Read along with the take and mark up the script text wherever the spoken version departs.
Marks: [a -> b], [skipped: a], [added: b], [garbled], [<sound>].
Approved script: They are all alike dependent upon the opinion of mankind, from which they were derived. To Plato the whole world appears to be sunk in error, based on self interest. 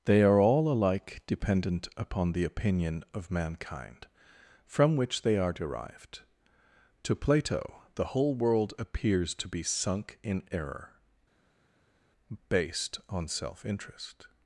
They are all alike dependent upon the opinion of mankind, from which they [were -> are] derived. To Plato the whole world appears to be sunk in error, based on self interest.